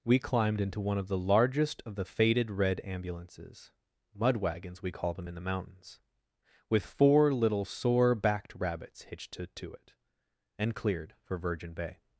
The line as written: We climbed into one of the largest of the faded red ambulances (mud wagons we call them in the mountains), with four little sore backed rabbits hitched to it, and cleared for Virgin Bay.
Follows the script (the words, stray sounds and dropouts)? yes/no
no